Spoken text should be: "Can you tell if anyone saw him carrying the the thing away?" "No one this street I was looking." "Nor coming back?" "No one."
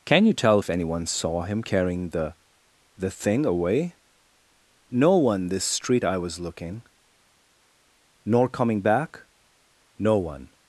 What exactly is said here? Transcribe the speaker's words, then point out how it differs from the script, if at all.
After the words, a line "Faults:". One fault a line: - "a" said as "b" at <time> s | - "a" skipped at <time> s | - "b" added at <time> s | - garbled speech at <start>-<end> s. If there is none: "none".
"Can you tell if anyone saw him carrying the the thing away?" "No one this street I was looking." "Nor coming back?" "No one."
Faults:
none